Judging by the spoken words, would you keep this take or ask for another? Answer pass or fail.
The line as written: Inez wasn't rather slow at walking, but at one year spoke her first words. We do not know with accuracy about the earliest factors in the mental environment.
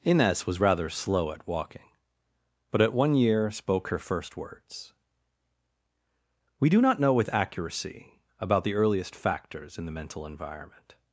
fail